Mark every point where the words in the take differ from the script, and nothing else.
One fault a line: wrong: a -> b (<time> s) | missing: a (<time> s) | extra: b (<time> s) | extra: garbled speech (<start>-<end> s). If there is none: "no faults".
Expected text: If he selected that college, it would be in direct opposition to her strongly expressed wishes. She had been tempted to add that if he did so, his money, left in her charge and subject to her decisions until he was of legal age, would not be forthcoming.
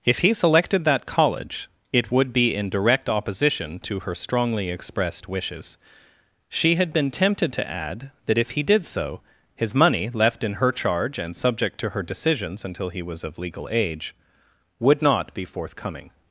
no faults